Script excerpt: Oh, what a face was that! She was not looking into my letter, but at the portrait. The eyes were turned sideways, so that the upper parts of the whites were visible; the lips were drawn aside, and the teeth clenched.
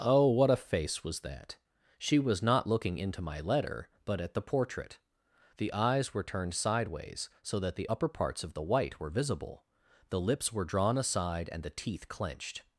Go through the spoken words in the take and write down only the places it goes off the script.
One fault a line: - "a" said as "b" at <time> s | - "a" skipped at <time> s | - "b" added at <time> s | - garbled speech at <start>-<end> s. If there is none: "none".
- "whites" said as "white" at 8.6 s